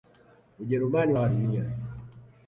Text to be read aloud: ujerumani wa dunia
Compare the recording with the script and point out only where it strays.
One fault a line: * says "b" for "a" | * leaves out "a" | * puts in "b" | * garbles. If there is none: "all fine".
all fine